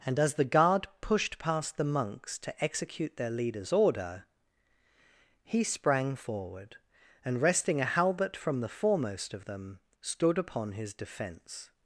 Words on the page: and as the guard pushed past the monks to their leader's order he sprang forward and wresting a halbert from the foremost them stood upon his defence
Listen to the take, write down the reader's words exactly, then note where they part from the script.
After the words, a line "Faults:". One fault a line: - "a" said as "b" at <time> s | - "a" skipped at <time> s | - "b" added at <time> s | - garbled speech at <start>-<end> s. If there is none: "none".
and as the guard pushed past the monks to execute their leader's order he sprang forward and wresting a halbert from the foremost of them stood upon his defence
Faults:
- "execute" added at 2.6 s
- "of" added at 9.3 s